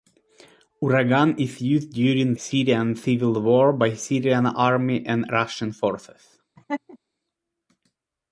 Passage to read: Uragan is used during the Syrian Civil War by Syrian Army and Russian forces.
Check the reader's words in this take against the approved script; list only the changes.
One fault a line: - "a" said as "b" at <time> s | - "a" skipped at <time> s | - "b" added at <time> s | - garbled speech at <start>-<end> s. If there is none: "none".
- "the" skipped at 2.3 s